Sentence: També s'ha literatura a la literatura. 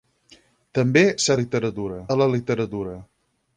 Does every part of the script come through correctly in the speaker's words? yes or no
yes